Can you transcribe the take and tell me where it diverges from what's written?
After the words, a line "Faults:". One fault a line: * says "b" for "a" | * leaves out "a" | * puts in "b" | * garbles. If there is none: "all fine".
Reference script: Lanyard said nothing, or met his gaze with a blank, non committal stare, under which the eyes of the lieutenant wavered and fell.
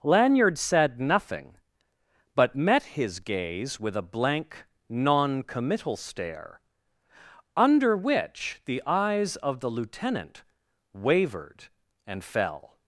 Lanyard said nothing, but met his gaze with a blank, non committal stare, under which the eyes of the lieutenant wavered and fell.
Faults:
* says "but" for "or"